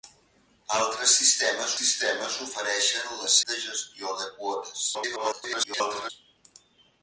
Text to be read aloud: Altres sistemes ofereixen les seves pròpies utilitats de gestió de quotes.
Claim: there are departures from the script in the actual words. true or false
true